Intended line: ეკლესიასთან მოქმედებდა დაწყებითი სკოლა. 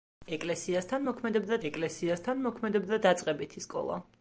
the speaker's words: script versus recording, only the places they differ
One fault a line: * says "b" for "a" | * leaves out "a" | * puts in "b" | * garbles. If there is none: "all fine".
* puts in "ეკლესიასთან მოქმედებდა"